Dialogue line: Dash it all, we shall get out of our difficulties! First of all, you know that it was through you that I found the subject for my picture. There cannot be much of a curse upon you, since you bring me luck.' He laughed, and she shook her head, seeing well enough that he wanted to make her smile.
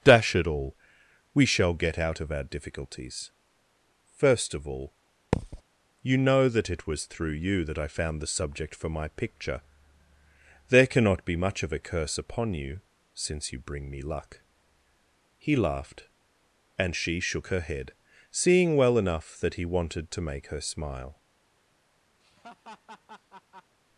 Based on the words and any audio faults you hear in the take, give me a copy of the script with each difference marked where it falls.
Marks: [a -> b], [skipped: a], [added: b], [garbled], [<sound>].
Dash it all, we shall get out of our difficulties! First of all, [thud] you know that it was through you that I found the subject for my picture. There cannot be much of a curse upon you, since you bring me luck.' He laughed, and she shook her head, seeing well enough that he wanted to make her smile. [laugh]